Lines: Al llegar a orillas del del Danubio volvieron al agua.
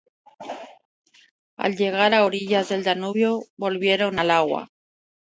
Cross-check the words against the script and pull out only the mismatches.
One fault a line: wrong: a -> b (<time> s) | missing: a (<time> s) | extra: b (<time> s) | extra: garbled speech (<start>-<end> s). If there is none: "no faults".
missing: del (2.8 s)